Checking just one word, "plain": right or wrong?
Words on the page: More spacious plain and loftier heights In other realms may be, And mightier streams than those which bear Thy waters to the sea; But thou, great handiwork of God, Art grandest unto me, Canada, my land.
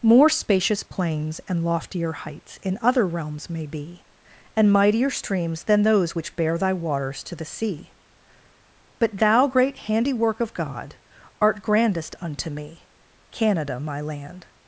wrong